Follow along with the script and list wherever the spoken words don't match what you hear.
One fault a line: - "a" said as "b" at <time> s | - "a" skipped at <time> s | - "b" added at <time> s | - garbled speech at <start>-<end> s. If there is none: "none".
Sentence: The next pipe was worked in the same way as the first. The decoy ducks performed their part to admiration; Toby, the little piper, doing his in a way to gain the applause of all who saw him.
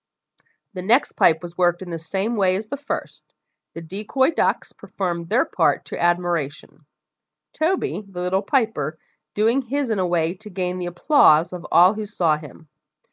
none